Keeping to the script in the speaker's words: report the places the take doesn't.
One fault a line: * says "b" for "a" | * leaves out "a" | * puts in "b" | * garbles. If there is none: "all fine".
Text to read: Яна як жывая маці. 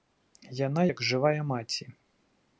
all fine